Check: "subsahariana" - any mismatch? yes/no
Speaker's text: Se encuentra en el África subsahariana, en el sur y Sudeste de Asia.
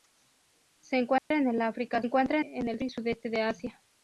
yes